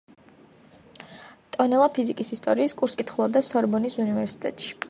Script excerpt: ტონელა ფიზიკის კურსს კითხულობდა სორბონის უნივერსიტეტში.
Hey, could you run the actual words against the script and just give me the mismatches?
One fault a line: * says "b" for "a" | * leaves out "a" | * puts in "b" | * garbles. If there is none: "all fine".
* puts in "ისტორიის"